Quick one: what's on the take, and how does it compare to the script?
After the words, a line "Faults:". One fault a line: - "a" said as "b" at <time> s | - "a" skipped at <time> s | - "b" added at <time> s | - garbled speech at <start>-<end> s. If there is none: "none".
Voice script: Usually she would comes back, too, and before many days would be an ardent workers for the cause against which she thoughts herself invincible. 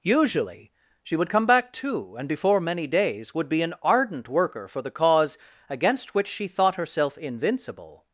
Usually she would come back, too, and before many days would be an ardent worker for the cause against which she thought herself invincible.
Faults:
- "comes" said as "come" at 1.3 s
- "workers" said as "worker" at 4.3 s
- "thoughts" said as "thought" at 6.5 s